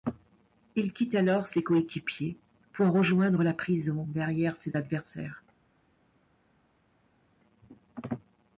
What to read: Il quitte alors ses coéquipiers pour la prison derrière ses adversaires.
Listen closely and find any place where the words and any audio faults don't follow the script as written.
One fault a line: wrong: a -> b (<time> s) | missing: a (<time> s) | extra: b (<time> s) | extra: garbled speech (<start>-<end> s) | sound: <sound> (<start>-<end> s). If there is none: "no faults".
extra: rejoindre (2.9 s)